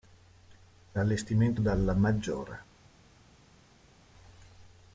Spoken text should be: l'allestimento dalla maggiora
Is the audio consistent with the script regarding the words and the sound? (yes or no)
yes